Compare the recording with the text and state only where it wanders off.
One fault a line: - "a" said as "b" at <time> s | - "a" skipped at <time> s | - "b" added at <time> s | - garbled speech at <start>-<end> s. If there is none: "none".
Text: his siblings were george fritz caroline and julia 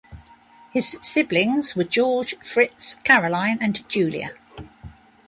none